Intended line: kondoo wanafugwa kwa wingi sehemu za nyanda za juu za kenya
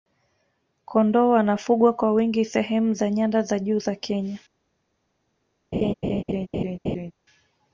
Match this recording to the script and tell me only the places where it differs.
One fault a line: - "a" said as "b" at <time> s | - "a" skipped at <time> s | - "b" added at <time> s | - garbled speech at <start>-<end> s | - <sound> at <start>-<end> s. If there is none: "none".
- laugh at 5.7-7.1 s